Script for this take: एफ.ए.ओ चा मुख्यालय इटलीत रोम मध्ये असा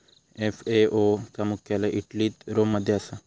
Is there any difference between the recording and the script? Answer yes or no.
no